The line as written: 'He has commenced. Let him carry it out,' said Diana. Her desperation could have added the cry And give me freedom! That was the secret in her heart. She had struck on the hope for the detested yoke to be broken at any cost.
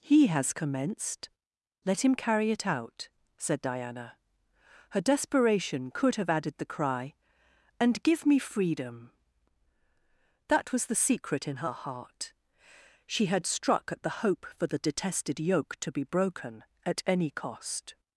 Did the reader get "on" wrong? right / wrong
wrong